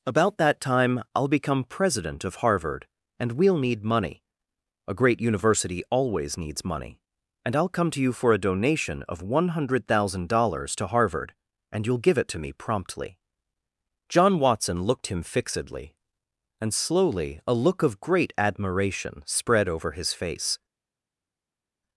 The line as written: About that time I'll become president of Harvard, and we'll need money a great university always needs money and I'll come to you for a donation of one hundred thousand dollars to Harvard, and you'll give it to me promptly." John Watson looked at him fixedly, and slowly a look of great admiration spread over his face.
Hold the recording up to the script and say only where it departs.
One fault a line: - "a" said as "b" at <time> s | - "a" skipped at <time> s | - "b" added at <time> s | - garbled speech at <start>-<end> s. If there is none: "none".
- "at" skipped at 15.1 s